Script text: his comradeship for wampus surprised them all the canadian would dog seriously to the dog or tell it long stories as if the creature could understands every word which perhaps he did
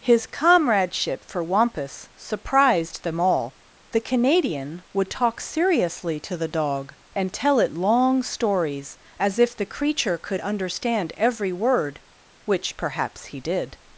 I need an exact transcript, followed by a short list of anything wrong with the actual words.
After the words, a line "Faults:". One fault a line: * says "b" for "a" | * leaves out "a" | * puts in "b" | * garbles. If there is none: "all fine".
his comradeship for wampus surprised them all the canadian would talk seriously to the dog and tell it long stories as if the creature could understand every word which perhaps he did
Faults:
* says "talk" for "dog"
* says "and" for "or"
* says "understand" for "understands"